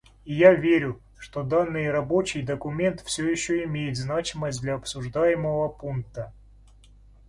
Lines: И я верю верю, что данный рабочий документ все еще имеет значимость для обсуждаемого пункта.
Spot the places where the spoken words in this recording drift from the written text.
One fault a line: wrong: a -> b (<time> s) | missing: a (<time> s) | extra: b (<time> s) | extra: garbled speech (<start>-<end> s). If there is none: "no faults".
missing: верю (1.0 s)